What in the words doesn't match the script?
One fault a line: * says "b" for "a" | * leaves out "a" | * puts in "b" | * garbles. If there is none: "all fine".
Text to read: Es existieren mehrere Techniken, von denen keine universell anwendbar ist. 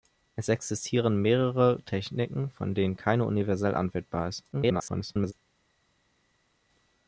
* garbles